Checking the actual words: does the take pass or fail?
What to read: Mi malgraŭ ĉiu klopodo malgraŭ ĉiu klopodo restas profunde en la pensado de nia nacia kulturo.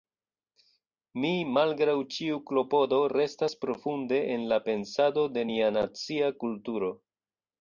fail